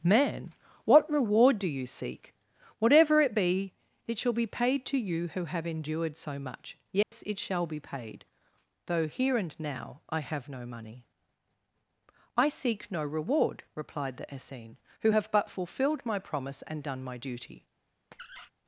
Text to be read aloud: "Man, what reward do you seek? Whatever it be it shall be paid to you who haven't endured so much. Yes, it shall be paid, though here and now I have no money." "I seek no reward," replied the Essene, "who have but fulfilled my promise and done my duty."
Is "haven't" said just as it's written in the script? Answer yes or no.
no